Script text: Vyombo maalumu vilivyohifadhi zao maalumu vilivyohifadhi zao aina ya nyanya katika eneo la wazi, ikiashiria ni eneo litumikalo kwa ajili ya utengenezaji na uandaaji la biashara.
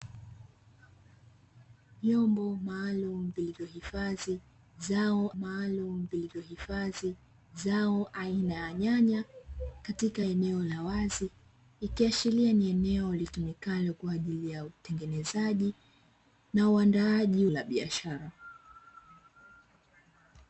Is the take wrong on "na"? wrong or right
right